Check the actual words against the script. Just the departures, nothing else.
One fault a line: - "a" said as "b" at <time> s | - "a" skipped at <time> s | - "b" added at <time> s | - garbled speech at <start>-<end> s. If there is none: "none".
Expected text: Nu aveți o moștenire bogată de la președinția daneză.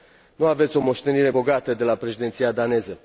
none